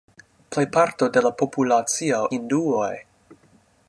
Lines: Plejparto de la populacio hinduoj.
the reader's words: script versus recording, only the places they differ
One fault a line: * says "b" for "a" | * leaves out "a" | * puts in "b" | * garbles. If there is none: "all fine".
all fine